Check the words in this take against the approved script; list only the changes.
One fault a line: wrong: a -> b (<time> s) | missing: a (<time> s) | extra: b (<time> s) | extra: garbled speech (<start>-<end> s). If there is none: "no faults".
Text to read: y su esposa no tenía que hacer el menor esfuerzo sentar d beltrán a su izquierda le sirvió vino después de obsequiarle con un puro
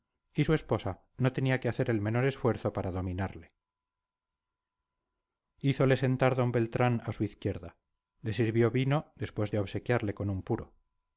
extra: para dominarle hízole (2.7 s)